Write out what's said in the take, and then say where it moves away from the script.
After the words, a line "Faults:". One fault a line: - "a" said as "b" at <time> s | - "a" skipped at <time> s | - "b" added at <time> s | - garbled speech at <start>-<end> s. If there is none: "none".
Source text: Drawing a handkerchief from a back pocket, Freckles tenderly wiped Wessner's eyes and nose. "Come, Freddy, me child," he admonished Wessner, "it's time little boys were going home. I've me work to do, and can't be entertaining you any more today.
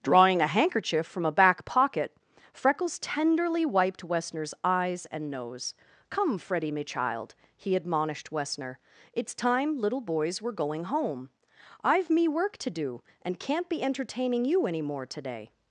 Drawing a handkerchief from a back pocket, Freckles tenderly wiped Wessner's eyes and nose. "Come, Freddy, me child," he admonished Wessner, "it's time little boys were going home. I've me work to do, and can't be entertaining you any more today.
Faults:
none